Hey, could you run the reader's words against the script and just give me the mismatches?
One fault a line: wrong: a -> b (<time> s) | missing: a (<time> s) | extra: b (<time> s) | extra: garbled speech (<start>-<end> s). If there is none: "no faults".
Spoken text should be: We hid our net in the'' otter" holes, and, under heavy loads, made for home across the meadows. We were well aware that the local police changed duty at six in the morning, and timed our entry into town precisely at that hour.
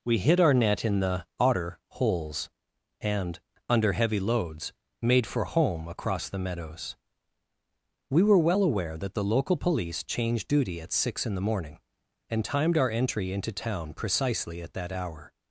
no faults